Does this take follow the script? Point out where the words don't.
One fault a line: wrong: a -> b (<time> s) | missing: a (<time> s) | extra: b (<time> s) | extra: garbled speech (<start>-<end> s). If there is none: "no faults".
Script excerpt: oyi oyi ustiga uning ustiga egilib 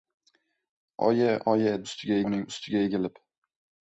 no faults